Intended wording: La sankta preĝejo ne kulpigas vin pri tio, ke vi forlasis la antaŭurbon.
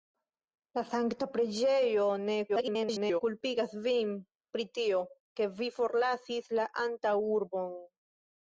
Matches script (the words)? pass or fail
fail